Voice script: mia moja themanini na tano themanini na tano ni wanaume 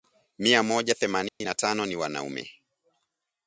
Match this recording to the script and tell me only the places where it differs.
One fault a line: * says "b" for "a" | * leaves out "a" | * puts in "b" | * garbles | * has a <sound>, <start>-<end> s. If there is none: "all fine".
* has a dropout, 1.3-1.4 s
* leaves out "themanini na tano"